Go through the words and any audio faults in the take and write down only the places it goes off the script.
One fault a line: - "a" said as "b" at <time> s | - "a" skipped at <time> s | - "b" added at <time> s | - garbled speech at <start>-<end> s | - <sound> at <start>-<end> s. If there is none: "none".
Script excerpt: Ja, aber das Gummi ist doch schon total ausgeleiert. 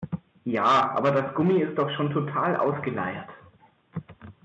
none